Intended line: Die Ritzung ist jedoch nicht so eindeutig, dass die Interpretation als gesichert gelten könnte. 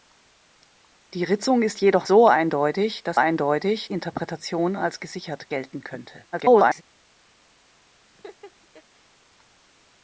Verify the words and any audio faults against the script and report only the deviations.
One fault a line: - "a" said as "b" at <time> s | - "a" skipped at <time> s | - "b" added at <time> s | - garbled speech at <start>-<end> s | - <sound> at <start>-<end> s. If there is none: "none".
- "nicht" skipped at 2.1 s
- "die" said as "eindeutig" at 3.1 s
- garbled speech at 6.3-6.8 s
- laugh at 8.1-8.8 s